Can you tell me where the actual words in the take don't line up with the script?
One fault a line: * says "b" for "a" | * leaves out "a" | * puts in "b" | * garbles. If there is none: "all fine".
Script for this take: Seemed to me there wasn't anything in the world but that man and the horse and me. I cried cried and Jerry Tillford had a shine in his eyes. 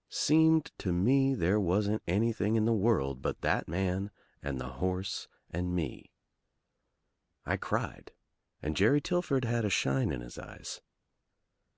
* leaves out "cried"